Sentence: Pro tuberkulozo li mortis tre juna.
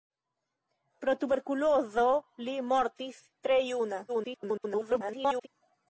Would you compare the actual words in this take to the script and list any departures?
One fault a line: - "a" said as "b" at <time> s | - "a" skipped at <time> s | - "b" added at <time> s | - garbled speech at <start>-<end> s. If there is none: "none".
- garbled speech at 4.1-5.5 s